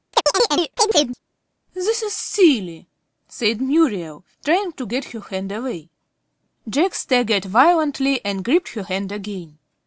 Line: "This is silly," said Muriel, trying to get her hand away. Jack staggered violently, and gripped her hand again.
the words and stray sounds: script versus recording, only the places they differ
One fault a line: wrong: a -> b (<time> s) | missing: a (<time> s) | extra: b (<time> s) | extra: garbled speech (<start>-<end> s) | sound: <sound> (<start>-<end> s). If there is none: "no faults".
sound: chirp (0.1-1.2 s)